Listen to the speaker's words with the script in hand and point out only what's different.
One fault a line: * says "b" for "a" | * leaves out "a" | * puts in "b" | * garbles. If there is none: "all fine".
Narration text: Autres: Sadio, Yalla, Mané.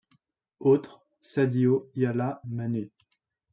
all fine